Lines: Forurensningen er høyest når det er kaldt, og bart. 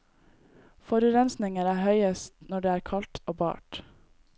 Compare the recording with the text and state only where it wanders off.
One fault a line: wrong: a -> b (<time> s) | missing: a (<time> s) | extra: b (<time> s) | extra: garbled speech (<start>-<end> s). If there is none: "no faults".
no faults